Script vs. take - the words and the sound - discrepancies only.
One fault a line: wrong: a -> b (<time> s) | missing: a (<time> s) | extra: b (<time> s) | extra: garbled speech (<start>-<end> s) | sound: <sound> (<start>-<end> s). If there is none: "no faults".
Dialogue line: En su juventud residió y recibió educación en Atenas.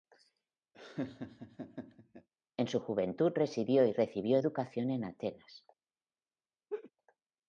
sound: laugh (0.7-2.3 s)
sound: laugh (6.7-6.9 s)